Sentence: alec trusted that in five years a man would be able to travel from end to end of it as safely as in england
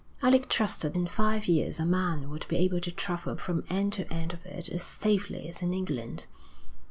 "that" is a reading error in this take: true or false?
true